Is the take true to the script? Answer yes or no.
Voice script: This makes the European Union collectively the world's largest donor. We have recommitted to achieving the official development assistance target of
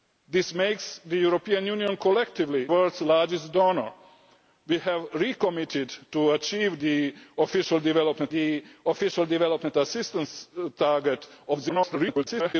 no